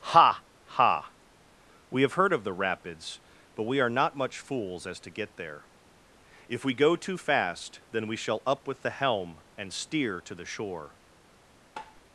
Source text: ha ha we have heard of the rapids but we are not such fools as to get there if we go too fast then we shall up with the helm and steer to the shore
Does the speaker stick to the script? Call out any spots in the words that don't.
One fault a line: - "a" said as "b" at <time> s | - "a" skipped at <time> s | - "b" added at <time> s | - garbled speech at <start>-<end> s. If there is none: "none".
- "such" said as "much" at 4.2 s